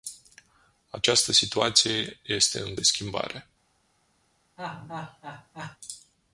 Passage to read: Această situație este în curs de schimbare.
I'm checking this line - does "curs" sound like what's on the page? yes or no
no